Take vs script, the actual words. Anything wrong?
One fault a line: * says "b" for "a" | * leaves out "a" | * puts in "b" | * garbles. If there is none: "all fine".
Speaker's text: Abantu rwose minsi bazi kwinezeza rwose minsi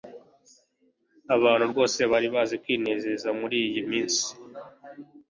* says "bari" for "minsi"
* says "muriyi" for "rwose"